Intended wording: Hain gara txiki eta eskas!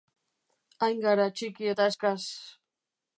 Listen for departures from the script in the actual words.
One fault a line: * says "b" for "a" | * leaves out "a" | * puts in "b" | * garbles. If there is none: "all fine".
all fine